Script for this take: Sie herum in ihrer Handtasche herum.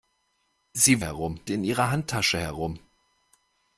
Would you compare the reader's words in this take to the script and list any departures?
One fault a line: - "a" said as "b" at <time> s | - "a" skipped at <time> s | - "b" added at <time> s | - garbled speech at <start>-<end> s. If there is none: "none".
none